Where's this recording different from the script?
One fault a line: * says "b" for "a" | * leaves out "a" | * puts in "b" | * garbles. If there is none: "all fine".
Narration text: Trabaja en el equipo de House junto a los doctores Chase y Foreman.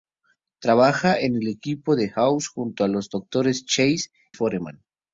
* leaves out "y"